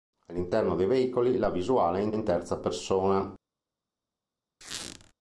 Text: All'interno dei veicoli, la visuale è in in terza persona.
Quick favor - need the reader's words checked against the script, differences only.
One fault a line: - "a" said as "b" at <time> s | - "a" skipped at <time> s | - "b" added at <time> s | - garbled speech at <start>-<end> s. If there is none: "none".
none